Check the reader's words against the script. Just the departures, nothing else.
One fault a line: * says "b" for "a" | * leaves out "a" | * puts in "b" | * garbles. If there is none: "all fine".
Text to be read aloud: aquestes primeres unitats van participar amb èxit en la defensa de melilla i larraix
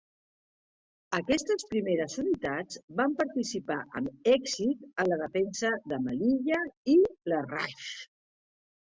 all fine